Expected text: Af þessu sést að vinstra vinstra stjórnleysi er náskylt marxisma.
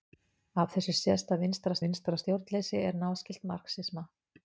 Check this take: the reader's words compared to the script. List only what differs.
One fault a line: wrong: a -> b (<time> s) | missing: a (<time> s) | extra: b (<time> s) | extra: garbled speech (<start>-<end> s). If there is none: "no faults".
no faults